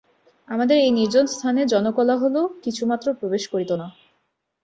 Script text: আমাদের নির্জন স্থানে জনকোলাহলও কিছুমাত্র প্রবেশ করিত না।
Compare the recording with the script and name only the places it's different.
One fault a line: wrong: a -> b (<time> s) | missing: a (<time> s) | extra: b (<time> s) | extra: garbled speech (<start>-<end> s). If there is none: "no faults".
extra: এই (0.8 s)